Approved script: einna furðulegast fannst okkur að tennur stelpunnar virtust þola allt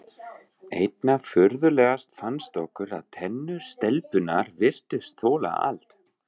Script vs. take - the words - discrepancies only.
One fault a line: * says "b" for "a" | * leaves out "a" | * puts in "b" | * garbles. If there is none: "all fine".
all fine